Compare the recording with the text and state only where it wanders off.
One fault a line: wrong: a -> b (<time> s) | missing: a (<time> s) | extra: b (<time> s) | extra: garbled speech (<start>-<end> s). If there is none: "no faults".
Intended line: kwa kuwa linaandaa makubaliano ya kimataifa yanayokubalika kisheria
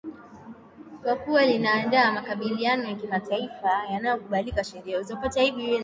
no faults